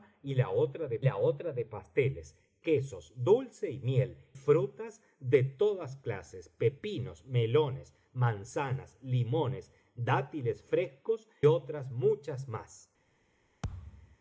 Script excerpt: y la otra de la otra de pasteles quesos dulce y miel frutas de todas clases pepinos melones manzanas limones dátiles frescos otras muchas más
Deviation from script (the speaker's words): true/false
false